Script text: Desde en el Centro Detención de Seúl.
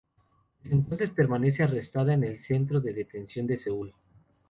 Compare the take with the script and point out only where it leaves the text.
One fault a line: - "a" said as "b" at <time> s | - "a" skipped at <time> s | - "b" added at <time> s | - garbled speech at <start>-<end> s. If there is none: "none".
- "entonces permanece arrestada" added at 0.8 s
- "de" added at 2.8 s